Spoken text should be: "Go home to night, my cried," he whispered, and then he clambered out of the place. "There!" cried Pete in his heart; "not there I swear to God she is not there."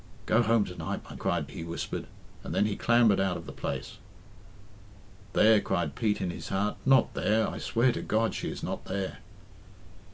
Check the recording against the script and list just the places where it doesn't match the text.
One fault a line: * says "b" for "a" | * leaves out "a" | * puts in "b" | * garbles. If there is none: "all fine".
all fine